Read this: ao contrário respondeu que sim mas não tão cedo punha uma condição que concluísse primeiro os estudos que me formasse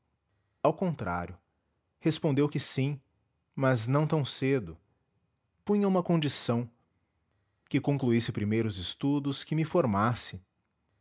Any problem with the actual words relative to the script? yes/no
no